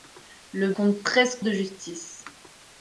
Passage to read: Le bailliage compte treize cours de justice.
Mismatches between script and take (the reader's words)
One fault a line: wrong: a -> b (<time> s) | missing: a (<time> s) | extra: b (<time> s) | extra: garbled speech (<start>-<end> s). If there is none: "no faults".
missing: bailliage (0.7 s)
missing: cours (1.4 s)